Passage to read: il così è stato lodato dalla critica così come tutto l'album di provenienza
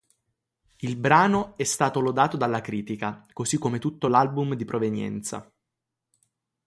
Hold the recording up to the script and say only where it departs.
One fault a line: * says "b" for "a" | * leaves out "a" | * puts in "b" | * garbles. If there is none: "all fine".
* says "brano" for "così"